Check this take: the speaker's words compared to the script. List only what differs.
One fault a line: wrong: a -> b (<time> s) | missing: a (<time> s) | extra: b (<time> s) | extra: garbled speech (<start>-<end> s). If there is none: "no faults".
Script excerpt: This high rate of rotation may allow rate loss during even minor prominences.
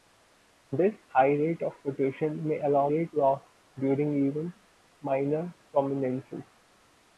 no faults